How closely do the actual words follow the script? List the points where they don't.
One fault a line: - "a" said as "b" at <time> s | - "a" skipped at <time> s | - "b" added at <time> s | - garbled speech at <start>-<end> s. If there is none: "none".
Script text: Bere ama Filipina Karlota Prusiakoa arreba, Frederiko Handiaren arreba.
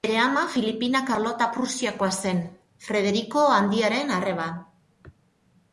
- "arreba" said as "zen" at 2.2 s